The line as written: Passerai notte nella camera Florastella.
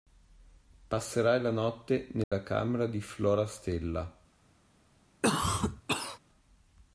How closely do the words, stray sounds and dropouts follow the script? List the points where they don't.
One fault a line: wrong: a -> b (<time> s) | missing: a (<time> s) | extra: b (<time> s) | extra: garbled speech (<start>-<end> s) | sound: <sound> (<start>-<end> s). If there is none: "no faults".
extra: la (1.4 s)
sound: dropout (2.2-2.3 s)
extra: di (2.9 s)
sound: cough (5.2-6.2 s)